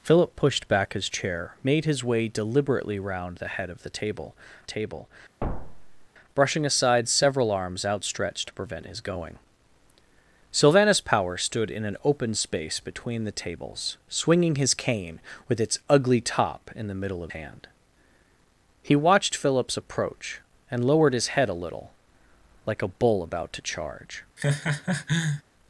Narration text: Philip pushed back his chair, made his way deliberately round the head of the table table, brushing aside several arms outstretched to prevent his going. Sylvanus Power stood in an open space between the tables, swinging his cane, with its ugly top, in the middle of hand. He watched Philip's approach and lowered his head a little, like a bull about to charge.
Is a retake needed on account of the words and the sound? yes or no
yes